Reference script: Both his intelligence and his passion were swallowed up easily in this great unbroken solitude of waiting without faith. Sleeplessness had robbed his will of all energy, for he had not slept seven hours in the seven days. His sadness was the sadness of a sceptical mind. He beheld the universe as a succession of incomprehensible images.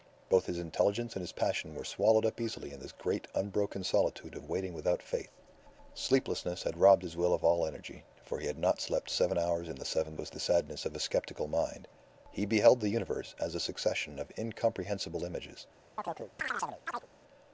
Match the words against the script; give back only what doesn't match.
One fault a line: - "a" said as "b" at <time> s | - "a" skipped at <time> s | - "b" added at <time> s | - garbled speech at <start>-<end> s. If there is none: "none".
- "days His sadness" skipped at 10.2 s